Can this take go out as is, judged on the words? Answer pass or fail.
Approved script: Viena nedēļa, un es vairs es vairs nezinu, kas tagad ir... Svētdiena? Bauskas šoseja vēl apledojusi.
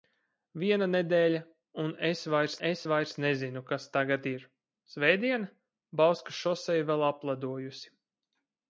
pass